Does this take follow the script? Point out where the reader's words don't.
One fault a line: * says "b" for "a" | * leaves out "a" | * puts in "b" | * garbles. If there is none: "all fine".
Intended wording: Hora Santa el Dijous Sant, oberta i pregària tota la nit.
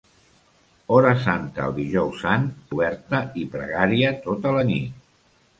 all fine